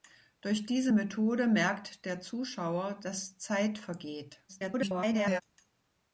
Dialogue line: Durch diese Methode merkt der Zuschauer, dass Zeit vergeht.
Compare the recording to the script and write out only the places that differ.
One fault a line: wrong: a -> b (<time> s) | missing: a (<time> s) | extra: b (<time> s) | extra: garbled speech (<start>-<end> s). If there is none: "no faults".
extra: garbled speech (4.5-5.4 s)